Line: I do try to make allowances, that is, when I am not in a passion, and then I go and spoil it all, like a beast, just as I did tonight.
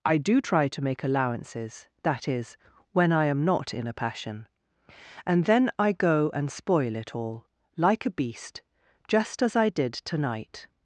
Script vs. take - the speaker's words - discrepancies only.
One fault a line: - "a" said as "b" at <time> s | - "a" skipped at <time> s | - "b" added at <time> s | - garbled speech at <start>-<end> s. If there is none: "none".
none